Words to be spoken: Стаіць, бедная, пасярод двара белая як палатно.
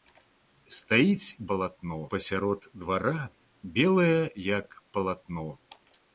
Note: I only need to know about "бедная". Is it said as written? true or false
false